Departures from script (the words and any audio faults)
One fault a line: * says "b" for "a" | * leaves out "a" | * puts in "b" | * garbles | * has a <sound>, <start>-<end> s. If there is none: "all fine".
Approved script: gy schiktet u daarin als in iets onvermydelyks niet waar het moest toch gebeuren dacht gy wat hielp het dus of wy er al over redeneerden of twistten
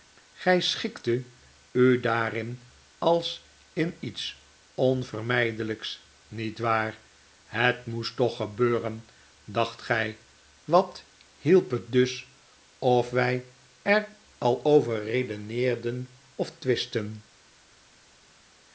all fine